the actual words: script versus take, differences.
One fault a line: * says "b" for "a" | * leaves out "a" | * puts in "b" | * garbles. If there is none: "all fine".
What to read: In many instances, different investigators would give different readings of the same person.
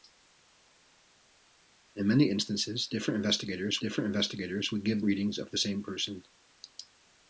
* puts in "different investigators"
* leaves out "different"